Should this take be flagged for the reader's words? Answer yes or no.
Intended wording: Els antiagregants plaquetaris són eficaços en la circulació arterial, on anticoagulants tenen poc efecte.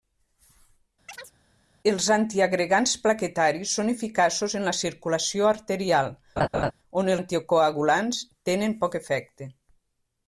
no